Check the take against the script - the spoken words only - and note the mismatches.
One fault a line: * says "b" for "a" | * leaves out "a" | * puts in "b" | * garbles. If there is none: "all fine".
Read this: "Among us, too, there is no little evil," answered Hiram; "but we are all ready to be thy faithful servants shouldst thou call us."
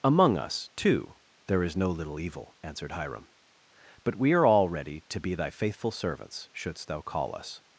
all fine